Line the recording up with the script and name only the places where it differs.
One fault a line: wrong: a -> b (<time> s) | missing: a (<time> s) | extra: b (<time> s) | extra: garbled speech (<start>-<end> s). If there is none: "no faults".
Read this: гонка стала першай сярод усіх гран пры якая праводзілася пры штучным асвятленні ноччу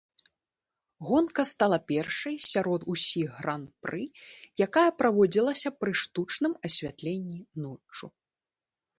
no faults